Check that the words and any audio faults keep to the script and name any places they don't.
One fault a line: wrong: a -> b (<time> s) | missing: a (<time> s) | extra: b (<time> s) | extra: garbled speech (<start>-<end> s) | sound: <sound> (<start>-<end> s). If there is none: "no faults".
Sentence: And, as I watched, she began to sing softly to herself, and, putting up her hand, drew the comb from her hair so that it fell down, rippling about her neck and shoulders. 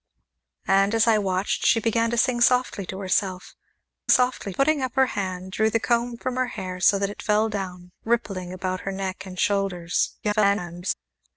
wrong: and -> softly (4.1 s)
extra: garbled speech (10.2-10.9 s)